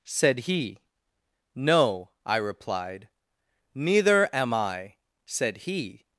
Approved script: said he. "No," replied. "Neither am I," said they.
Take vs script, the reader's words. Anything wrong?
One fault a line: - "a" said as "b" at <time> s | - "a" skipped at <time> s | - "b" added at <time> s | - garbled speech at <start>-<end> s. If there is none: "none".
- "I" added at 2.2 s
- "they" said as "he" at 5.6 s